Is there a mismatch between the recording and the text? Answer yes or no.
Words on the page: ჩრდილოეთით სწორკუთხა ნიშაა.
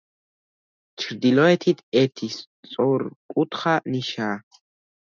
yes